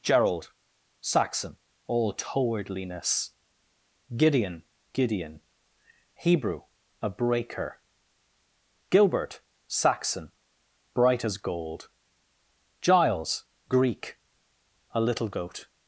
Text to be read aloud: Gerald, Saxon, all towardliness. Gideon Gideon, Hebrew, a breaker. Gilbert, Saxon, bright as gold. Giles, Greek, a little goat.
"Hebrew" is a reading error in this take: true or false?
false